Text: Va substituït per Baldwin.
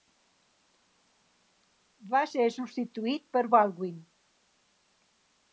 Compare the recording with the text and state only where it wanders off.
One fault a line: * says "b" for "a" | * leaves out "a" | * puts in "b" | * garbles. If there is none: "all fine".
* puts in "ser"